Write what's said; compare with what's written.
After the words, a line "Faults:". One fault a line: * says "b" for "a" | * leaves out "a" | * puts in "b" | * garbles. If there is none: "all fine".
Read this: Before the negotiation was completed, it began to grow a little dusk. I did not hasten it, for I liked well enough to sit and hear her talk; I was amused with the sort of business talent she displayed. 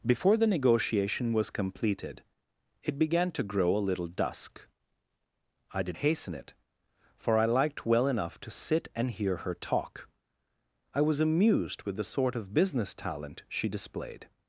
Before the negotiation was completed, it began to grow a little dusk. I did hasten it, for I liked well enough to sit and hear her talk; I was amused with the sort of business talent she displayed.
Faults:
* leaves out "not"